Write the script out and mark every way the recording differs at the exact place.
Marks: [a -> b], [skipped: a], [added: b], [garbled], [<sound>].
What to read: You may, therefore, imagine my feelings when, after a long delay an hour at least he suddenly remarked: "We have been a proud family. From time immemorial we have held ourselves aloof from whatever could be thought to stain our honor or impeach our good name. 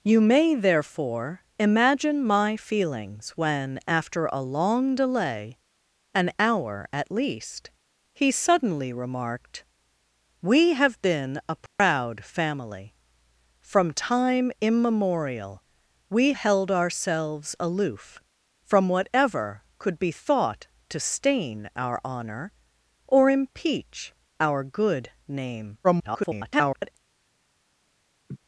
You may, therefore, imagine my feelings when, after a long delay an hour at least he suddenly remarked: "We have been a proud [dropout] family. From time immemorial we [skipped: have] held ourselves aloof from whatever could be thought to stain our honor or impeach our good name. [garbled] [laugh]